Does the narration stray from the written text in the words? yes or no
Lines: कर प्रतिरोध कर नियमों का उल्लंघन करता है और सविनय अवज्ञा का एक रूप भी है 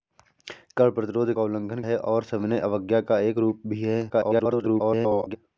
yes